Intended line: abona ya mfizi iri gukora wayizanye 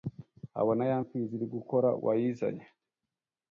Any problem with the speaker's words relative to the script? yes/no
no